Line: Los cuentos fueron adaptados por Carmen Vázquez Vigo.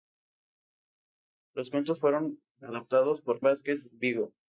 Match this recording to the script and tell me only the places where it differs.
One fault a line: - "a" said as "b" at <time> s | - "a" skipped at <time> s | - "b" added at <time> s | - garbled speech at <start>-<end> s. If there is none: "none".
- "Carmen" skipped at 3.4 s